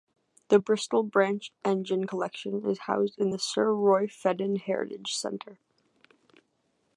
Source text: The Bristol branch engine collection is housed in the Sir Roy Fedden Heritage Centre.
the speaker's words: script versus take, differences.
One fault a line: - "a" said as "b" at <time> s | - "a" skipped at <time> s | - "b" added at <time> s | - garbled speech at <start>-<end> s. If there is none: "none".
none